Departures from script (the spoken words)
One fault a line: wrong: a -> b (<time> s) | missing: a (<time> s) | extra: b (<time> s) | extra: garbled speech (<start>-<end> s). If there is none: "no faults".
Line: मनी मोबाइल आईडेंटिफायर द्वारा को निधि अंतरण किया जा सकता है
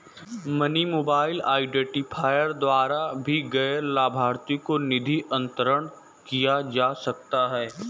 extra: भी गैर लाभार्थी (3.2 s)